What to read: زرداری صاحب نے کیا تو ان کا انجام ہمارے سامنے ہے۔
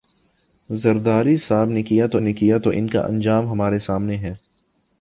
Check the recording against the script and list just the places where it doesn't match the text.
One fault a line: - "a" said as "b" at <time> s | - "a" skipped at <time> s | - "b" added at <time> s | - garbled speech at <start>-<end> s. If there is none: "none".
- "نے کیا تو" added at 2.2 s